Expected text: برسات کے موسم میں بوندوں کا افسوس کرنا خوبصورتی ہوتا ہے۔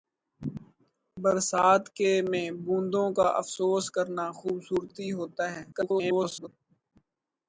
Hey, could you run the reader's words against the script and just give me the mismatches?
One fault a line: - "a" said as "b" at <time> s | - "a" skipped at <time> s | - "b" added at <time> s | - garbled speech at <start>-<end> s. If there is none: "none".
- "موسم" skipped at 2.1 s
- garbled speech at 5.7-6.5 s